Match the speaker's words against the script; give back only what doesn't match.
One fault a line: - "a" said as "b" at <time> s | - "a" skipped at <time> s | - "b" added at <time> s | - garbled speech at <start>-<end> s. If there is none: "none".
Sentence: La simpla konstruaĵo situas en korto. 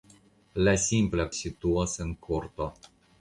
- "konstruaĵo" skipped at 1.3 s